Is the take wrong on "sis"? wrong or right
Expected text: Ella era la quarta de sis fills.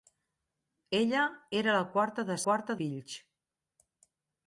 wrong